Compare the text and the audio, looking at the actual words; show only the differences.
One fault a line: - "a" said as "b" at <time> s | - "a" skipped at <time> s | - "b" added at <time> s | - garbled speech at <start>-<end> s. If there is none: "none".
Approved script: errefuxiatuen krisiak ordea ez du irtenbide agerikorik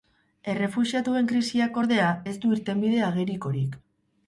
none